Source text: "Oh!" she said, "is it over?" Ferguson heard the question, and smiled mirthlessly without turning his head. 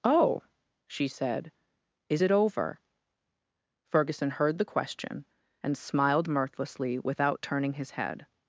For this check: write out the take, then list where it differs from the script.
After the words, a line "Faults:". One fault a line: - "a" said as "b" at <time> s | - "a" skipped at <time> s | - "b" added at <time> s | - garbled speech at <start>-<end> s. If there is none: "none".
"Oh!" she said, "is it over?" Ferguson heard the question, and smiled mirthlessly without turning his head.
Faults:
none